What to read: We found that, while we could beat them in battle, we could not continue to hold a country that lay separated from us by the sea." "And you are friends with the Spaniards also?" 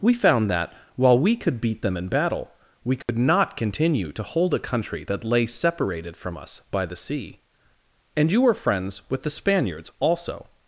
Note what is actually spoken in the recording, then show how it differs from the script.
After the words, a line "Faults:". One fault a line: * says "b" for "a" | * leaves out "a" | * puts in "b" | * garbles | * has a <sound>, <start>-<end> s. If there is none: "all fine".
We found that, while we could beat them in battle, we could not continue to hold a country that lay separated from us by the sea." "And you were friends with the Spaniards also?"
Faults:
* has a dropout, 3.0-3.1 s
* says "were" for "are"